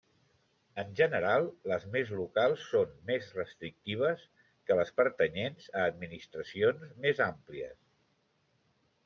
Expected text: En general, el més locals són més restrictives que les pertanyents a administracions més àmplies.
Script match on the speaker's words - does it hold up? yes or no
no